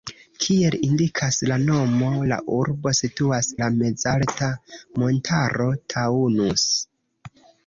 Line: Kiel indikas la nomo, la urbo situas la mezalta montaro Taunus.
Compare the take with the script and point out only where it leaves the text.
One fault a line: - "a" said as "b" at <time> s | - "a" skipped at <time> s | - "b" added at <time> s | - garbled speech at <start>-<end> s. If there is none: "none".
none